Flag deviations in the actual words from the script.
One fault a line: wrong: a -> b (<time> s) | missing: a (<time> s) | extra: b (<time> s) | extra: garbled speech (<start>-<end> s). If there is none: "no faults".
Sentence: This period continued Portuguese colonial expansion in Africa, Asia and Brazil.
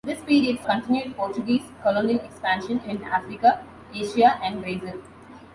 no faults